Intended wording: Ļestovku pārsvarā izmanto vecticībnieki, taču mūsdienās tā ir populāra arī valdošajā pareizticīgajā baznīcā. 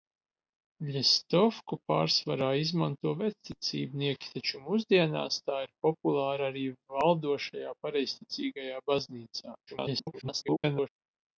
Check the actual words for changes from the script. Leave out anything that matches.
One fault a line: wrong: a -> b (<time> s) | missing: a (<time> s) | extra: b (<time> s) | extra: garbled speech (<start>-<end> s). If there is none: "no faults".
extra: garbled speech (9.7-10.9 s)